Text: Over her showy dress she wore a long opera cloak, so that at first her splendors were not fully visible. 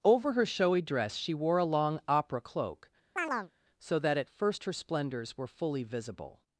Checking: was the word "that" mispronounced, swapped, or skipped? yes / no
no